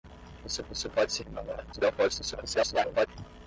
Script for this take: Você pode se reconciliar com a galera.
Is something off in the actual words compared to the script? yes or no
yes